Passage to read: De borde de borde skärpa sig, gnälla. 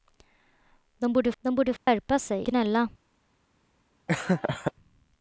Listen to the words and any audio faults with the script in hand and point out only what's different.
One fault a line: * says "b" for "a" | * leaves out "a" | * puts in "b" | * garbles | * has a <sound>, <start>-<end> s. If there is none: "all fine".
* has a dropout, 1.8-1.9 s
* has a laugh, 4.1-4.7 s